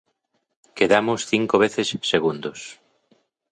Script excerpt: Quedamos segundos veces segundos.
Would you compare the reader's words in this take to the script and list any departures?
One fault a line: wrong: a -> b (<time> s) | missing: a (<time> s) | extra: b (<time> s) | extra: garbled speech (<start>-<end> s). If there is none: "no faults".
wrong: segundos -> cinco (1.3 s)